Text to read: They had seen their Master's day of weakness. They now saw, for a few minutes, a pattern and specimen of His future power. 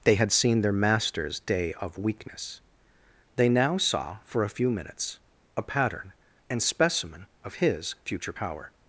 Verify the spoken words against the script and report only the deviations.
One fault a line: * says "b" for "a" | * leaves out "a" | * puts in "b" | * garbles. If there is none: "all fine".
all fine